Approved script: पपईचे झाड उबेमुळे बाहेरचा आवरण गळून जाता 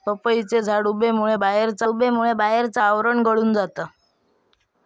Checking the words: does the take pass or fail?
fail